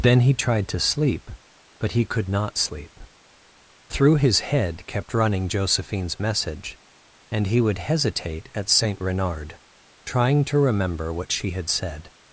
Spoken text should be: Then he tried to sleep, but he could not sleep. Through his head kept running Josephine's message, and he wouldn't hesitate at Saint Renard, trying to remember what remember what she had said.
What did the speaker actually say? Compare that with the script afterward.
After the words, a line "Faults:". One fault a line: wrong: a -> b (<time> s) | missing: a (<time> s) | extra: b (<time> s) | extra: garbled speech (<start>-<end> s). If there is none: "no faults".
Then he tried to sleep, but he could not sleep. Through his head kept running Josephine's message, and he would hesitate at Saint Renard, trying to remember what she had said.
Faults:
wrong: wouldn't -> would (7.6 s)
missing: remember what (11.3 s)